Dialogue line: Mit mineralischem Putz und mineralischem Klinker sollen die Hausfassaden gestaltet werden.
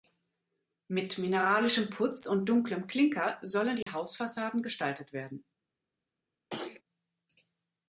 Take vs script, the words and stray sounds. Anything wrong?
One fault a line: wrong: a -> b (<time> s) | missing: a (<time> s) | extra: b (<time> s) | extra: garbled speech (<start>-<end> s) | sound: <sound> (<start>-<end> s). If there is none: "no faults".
wrong: mineralischem -> dunklem (2.5 s)
sound: dropout (3.8-3.9 s)
sound: throat clearing (6.5-6.8 s)